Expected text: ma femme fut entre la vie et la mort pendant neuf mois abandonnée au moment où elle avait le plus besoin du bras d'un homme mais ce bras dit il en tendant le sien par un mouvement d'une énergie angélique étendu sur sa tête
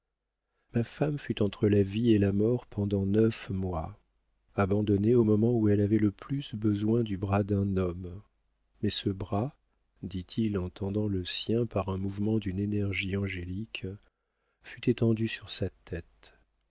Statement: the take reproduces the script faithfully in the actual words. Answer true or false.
false